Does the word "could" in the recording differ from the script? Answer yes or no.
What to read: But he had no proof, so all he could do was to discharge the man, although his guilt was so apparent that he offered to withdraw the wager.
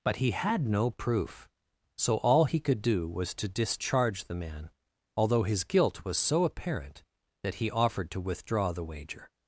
no